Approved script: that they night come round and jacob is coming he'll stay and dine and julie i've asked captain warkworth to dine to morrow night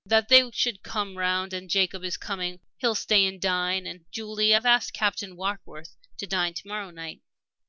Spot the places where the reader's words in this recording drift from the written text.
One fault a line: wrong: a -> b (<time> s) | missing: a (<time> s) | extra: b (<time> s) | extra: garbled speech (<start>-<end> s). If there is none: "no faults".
wrong: night -> should (0.5 s)